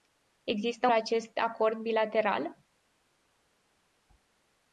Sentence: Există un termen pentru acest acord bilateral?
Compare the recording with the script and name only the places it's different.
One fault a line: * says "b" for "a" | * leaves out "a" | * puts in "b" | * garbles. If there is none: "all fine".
* leaves out "un termen pentru"